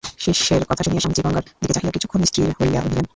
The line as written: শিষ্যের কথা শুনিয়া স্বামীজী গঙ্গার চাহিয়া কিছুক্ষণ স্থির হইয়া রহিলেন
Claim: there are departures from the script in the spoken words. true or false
true